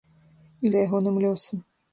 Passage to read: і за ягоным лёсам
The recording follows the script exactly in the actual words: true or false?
true